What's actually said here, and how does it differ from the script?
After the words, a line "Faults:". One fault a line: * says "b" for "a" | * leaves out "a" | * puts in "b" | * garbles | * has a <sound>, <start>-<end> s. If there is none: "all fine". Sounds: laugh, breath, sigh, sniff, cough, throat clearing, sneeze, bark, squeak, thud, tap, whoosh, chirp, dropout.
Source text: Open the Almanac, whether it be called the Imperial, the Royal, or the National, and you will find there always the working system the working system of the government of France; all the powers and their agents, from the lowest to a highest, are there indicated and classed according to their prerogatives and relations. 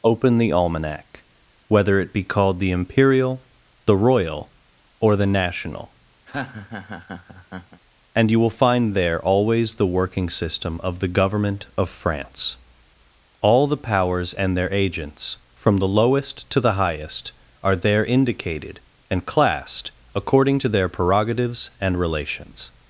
Open the Almanac, whether it be called the Imperial, the Royal, or the National, and you will find there always the working system of the government of France; all the powers and their agents, from the lowest to the highest, are there indicated and classed according to their prerogatives and relations.
Faults:
* has a laugh, 6.3-7.8 s
* leaves out "the working system"
* says "the" for "a"